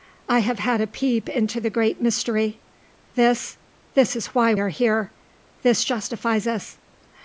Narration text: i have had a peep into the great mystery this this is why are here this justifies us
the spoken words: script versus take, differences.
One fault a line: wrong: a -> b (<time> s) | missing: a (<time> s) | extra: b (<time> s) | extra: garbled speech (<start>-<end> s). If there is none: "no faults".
no faults